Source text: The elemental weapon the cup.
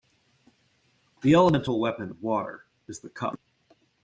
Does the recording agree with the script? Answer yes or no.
no